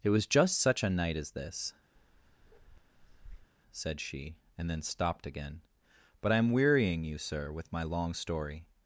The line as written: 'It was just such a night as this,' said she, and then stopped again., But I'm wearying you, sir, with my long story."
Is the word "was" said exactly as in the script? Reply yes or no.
yes